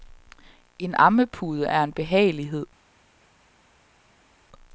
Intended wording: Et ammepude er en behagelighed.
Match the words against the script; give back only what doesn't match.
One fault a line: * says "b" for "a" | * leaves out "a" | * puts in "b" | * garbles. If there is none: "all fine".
* says "En" for "Et"